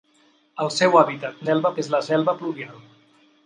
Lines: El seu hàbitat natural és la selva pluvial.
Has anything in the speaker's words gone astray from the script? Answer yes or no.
yes